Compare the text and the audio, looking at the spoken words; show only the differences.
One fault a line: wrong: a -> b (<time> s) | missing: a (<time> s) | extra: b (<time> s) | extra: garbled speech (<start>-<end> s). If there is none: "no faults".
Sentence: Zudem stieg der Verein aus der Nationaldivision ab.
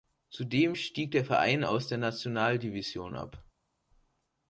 no faults